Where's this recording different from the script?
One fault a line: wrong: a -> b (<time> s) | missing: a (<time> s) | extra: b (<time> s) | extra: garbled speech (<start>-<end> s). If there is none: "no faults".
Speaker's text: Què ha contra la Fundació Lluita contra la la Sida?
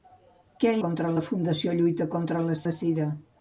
no faults